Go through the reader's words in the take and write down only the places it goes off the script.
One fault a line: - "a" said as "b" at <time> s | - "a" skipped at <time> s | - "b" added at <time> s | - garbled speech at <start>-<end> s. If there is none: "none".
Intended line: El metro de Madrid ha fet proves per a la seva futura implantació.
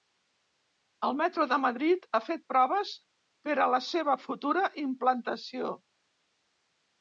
none